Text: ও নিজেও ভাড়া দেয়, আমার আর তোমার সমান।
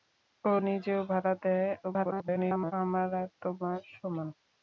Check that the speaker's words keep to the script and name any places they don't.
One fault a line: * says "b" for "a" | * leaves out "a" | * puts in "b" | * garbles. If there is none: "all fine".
* garbles